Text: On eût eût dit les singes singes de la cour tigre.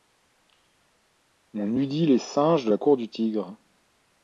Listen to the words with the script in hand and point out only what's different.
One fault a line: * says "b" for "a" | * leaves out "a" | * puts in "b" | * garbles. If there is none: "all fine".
* leaves out "eût"
* leaves out "singes"
* puts in "du"